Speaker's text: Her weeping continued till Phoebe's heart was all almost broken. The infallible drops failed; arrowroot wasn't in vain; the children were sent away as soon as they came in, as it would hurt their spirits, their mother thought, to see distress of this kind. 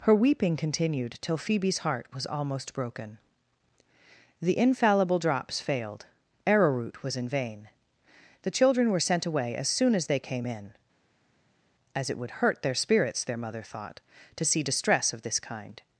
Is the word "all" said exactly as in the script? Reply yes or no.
no